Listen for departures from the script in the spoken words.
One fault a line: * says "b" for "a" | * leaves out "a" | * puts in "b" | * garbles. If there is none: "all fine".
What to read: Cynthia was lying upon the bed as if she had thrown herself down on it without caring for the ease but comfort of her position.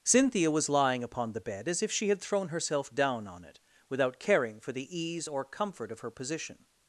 * says "or" for "but"